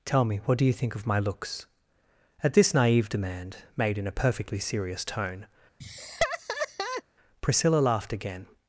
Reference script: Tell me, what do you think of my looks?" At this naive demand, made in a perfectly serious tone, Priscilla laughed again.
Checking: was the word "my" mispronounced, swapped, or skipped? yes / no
no